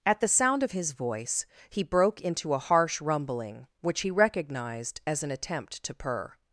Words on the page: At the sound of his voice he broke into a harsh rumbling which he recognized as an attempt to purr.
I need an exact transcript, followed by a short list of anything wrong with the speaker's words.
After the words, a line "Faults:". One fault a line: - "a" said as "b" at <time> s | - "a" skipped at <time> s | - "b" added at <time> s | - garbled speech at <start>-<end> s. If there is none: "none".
At the sound of his voice he broke into a harsh rumbling which he recognized as an attempt to purr.
Faults:
none